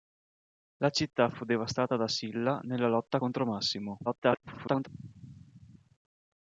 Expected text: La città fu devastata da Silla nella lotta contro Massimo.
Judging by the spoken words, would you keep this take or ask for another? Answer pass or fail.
fail